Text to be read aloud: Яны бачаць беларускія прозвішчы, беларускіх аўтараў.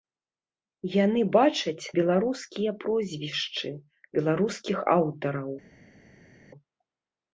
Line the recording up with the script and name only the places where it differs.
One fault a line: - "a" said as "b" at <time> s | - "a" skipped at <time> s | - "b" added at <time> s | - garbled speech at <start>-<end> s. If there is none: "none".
none